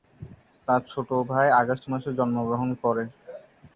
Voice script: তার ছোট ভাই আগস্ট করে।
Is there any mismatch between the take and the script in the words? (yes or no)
yes